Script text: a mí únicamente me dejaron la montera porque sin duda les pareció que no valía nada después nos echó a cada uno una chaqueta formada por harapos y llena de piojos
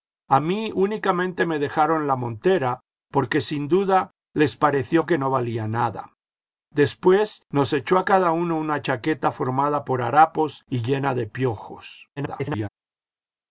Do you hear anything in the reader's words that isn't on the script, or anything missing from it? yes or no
yes